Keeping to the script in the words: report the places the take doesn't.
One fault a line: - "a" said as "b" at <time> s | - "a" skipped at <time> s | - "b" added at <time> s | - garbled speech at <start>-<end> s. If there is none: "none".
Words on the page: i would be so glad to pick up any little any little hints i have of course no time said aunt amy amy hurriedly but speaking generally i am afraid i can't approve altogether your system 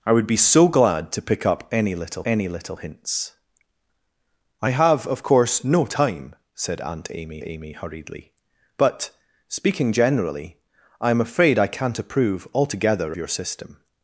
none